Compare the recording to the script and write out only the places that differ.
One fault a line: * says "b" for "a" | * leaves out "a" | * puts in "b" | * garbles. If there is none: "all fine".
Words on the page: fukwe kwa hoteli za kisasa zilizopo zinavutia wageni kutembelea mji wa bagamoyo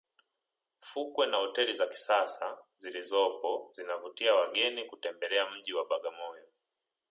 * says "na" for "kwa"